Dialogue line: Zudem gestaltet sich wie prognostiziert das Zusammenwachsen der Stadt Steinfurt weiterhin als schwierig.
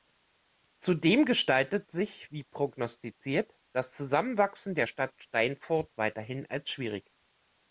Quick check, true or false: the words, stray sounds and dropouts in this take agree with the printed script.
true